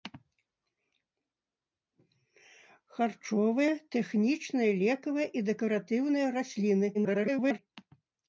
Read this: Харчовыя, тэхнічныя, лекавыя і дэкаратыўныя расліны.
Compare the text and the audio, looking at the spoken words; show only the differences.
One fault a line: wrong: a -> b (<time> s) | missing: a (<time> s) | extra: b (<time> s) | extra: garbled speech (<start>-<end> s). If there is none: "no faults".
extra: garbled speech (6.9-7.6 s)